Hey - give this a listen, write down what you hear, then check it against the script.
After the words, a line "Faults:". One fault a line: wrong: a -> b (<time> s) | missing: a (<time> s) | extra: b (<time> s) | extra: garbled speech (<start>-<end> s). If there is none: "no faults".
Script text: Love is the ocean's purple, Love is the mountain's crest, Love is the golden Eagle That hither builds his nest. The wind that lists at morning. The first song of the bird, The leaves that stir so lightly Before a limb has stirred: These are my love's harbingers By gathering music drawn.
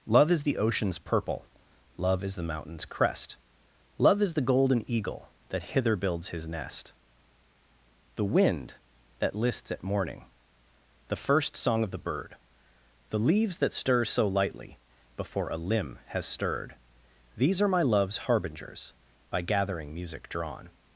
Love is the ocean's purple, Love is the mountain's crest, Love is the golden Eagle That hither builds his nest. The wind that lists at morning. The first song of the bird, The leaves that stir so lightly Before a limb has stirred: These are my love's harbingers By gathering music drawn.
Faults:
no faults